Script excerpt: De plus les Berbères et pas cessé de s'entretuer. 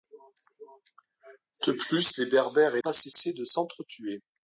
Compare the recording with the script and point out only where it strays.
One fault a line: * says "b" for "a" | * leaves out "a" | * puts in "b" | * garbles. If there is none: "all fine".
all fine